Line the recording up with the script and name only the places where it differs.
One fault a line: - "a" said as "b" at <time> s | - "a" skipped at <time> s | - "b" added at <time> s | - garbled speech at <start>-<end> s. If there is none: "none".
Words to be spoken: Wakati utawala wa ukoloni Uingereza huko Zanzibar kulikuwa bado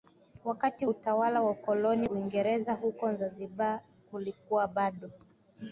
none